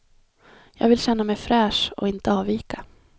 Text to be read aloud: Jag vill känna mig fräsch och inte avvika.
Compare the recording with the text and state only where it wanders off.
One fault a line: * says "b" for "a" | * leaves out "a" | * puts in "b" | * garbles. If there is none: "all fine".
all fine